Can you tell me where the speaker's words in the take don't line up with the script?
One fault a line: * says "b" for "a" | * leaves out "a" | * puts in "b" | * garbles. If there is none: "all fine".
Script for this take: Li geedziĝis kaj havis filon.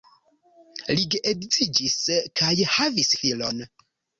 all fine